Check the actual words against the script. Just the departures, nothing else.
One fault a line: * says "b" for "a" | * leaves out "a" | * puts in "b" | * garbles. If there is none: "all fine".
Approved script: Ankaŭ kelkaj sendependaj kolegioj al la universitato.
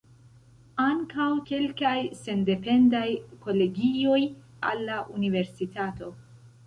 all fine